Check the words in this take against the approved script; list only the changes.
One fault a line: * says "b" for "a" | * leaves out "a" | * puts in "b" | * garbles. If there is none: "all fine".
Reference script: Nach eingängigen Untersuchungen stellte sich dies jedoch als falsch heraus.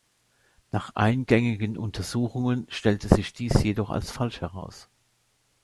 all fine